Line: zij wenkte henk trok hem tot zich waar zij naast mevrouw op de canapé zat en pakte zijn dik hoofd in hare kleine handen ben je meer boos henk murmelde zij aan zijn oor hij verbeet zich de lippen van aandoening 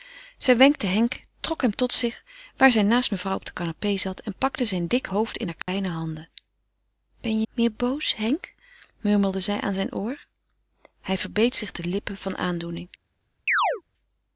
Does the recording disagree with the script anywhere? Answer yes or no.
no